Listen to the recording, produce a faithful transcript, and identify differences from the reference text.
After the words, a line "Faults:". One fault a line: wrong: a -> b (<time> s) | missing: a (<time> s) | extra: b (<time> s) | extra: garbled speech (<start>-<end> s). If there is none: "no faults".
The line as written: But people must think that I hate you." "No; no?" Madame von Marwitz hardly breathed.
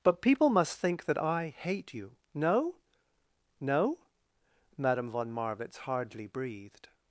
But people must think that I hate you." "No; no?" Madame von Marwitz hardly breathed.
Faults:
no faults